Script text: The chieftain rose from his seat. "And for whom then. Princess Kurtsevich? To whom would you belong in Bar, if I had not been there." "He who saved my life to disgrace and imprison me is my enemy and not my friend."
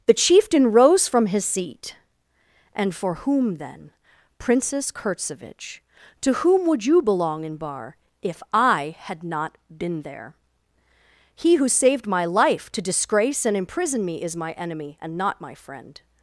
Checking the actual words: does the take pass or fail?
pass